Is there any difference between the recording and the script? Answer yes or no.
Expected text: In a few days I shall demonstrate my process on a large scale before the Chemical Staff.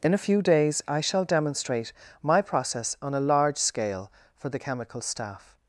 yes